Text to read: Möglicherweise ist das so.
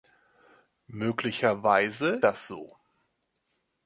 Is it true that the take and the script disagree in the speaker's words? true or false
true